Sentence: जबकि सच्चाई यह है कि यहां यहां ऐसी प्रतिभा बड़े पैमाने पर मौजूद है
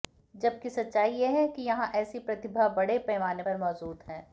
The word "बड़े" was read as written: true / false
true